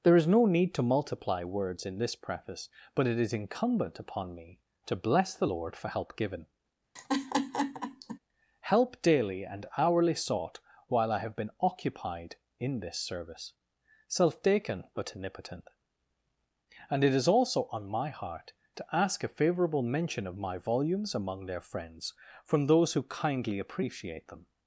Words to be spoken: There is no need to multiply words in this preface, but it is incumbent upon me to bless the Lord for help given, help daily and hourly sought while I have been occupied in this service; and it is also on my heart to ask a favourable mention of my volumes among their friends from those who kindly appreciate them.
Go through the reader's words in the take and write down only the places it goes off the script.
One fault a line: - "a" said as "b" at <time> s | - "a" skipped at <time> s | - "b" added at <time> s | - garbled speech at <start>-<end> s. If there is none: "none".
- "self taken but omnipotent" added at 14.1 s